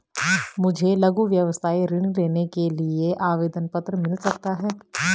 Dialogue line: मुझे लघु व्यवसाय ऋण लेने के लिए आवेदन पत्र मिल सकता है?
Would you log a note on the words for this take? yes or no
no